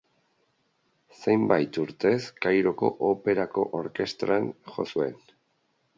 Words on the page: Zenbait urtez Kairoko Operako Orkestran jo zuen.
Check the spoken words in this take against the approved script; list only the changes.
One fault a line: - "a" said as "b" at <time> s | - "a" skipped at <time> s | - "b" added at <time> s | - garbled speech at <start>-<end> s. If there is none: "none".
none